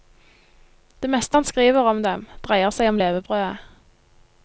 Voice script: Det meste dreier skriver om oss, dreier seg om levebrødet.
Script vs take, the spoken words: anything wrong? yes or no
yes